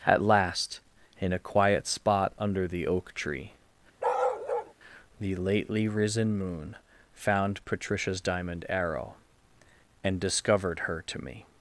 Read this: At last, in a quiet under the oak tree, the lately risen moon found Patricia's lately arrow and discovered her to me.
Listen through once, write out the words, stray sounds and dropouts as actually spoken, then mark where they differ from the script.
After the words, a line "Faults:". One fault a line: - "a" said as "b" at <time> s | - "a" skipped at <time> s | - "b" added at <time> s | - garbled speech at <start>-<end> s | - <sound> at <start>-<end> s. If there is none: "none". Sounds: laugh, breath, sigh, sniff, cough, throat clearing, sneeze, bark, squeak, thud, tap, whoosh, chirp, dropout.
At last, in a quiet spot under the oak tree, the lately risen moon found Patricia's diamond arrow and discovered her to me.
Faults:
- "spot" added at 1.9 s
- bark at 4.0-4.7 s
- "lately" said as "diamond" at 8.2 s